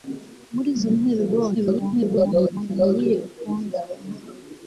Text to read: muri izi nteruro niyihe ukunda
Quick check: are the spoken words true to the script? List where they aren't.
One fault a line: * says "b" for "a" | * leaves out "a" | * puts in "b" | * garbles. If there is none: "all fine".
* garbles